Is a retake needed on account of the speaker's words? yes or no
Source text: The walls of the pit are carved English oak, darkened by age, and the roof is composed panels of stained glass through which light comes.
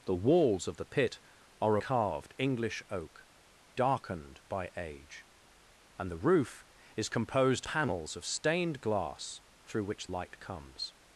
no